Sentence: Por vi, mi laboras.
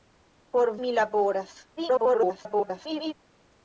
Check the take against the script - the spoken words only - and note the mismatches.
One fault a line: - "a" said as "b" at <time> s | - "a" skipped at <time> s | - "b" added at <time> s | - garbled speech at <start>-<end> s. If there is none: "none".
- "vi" skipped at 0.7 s
- garbled speech at 1.8-3.1 s